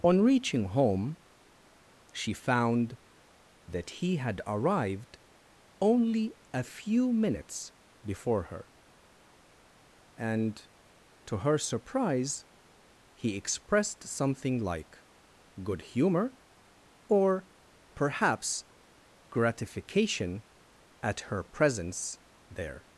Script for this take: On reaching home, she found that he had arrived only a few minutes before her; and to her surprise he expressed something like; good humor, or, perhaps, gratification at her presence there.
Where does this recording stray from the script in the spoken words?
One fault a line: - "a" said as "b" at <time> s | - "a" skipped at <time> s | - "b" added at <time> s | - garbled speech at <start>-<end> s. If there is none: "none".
none